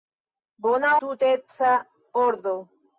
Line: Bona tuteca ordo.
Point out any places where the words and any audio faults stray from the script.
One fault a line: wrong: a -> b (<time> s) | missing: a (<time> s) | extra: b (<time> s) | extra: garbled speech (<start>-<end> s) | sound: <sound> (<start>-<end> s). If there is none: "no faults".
no faults